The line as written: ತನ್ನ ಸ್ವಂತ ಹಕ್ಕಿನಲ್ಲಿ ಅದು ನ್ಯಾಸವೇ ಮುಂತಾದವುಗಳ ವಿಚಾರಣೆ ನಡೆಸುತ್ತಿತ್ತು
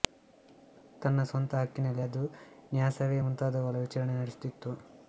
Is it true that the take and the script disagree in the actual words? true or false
false